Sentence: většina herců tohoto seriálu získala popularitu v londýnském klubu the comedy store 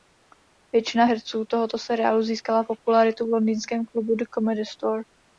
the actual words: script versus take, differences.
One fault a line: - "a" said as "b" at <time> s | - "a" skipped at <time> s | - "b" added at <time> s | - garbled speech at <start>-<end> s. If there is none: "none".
none